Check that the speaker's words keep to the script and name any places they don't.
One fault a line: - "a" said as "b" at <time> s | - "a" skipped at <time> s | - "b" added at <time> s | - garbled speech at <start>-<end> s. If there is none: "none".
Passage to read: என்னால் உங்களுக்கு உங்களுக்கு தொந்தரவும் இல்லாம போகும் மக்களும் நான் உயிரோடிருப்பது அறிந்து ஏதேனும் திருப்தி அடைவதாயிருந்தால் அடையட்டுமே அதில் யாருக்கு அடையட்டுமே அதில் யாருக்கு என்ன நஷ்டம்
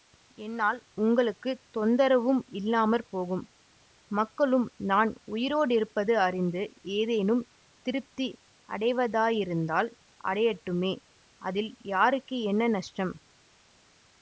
- "உங்களுக்கு" skipped at 1.5 s
- "அடையட்டுமே அதில் யாருக்கு" skipped at 12.4 s